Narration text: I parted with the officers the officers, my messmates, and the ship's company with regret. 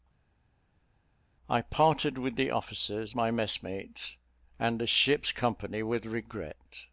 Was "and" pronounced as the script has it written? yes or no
yes